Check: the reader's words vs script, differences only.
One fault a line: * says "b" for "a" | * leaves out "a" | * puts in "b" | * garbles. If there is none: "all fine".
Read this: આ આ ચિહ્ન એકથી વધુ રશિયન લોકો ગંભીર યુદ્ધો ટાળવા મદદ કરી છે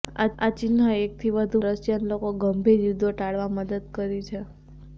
all fine